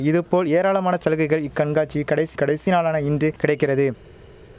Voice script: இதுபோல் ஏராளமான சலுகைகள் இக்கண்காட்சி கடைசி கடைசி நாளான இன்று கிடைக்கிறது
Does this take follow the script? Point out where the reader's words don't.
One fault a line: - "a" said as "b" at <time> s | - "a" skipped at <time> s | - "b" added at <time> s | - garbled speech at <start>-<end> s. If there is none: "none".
none